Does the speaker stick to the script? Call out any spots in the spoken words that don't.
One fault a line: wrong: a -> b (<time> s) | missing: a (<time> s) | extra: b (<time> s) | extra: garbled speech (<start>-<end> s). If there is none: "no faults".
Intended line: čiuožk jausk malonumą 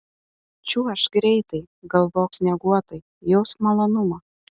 extra: greitai galvok snieguotai (1.2 s)